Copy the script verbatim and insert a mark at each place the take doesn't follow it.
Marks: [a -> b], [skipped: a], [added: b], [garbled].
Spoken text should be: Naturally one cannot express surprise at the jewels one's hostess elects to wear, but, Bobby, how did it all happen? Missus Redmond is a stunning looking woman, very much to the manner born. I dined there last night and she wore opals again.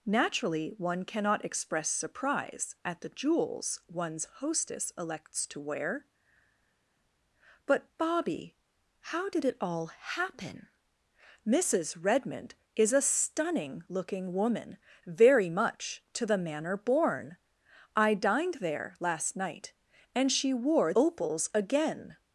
Naturally one cannot express surprise at the jewels one's hostess elects to wear, but, Bobby, how did it all happen? Missus Redmond is a stunning looking woman, very much to the manner born. I dined there last night and she wore opals again.